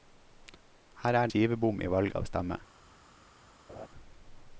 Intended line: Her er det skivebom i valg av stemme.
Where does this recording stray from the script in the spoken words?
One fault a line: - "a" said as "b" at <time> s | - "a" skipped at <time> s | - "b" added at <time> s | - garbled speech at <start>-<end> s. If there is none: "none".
- "det" skipped at 1.3 s